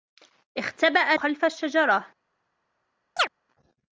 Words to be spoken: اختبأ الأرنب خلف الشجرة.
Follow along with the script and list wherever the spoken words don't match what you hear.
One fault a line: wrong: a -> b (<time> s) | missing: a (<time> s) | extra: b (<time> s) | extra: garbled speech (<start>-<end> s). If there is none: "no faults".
missing: الأرنب (1.1 s)